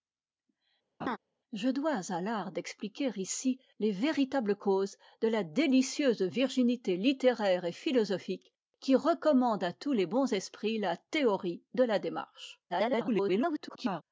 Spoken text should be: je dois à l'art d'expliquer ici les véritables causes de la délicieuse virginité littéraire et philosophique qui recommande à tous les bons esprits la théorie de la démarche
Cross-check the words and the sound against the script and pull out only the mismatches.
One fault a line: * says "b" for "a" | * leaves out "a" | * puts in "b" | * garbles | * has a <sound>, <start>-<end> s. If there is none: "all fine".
* has a laugh, 1.0-1.2 s
* garbles